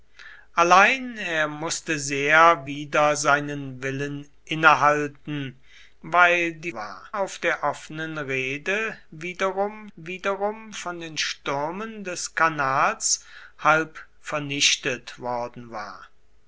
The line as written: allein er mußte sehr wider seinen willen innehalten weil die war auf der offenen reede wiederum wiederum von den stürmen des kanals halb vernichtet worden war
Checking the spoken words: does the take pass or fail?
pass